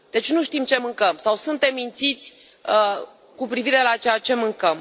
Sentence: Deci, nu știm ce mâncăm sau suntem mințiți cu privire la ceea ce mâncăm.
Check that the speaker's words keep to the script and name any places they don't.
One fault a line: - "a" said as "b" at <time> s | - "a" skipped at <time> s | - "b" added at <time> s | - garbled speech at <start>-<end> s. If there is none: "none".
none